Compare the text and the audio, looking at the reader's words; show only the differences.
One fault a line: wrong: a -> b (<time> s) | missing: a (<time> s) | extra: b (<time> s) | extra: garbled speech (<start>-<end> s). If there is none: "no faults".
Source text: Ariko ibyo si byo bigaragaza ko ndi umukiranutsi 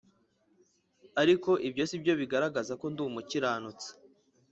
no faults